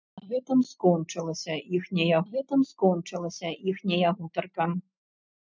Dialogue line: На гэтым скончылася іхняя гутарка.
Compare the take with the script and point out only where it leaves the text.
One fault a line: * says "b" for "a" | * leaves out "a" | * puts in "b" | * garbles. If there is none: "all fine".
* puts in "гэтым скончылася іхняя"